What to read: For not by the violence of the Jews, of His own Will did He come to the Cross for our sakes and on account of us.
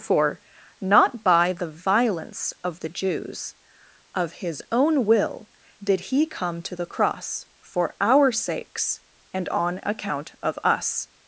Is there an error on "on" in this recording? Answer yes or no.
no